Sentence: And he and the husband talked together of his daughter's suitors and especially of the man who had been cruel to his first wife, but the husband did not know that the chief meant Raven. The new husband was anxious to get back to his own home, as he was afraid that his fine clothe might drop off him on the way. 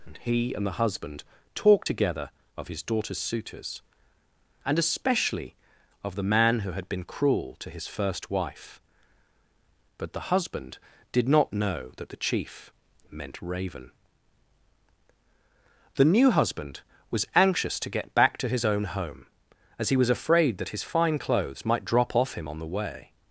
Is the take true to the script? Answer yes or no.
no